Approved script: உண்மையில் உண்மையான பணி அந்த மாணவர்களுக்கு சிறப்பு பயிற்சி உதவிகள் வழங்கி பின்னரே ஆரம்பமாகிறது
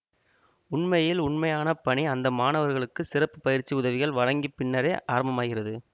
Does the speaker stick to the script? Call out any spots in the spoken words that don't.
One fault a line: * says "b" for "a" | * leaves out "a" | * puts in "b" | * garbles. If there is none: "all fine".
all fine